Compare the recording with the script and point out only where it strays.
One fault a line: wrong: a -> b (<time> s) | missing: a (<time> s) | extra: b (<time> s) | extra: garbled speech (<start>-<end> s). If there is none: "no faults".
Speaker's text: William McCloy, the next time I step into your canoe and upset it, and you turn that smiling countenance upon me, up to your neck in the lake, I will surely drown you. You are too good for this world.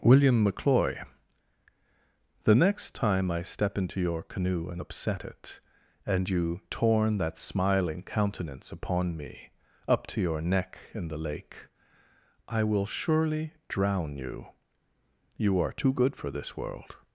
wrong: turn -> torn (6.7 s)